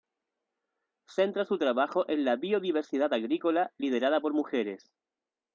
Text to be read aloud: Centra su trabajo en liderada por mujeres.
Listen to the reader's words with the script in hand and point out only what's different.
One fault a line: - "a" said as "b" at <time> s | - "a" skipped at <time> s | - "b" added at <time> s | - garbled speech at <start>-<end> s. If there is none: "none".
- "la biodiversidad agrícola" added at 2.2 s